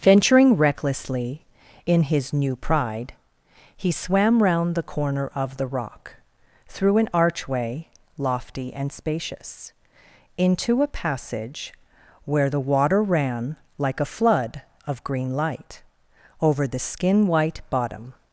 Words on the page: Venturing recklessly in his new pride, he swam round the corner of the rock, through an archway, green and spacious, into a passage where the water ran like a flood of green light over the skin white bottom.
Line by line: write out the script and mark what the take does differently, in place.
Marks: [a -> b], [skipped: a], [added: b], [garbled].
Venturing recklessly in his new pride, he swam round the corner of the rock, through an archway, [green -> lofty] and spacious, into a passage where the water ran like a flood of green light over the skin white bottom.